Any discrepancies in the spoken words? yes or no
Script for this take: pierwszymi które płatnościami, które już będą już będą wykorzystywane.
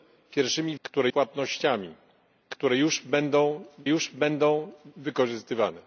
no